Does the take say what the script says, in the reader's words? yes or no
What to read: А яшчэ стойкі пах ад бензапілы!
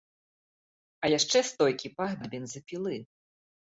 yes